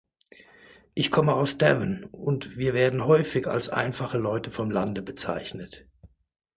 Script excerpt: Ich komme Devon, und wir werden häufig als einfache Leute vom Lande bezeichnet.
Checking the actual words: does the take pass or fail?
fail